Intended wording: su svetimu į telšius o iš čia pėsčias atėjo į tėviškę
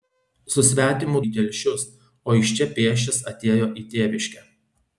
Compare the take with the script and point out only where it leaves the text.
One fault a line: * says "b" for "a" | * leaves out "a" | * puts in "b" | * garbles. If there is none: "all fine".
all fine